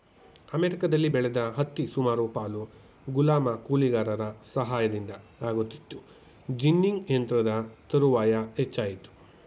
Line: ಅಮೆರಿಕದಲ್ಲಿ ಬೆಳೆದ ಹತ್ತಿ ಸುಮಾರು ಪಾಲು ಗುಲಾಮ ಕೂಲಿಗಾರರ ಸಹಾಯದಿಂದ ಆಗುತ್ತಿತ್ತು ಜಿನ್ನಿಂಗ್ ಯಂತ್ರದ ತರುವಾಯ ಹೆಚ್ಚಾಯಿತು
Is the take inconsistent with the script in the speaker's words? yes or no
no